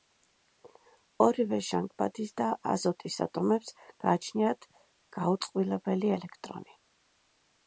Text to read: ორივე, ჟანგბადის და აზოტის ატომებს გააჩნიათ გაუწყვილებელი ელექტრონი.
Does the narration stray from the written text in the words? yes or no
no